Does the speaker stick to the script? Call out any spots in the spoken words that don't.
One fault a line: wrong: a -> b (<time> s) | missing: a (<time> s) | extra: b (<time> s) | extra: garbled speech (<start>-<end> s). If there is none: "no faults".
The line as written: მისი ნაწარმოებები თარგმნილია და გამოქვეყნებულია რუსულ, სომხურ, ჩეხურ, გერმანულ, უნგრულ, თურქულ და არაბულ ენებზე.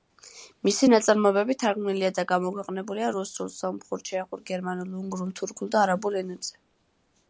no faults